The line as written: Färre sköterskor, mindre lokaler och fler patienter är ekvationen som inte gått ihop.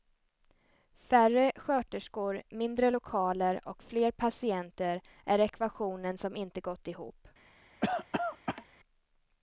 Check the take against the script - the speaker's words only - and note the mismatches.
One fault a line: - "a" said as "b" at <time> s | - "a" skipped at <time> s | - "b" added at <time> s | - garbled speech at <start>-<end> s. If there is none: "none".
none